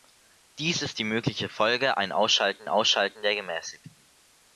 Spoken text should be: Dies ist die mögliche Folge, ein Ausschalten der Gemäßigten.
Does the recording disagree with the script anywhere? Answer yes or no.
yes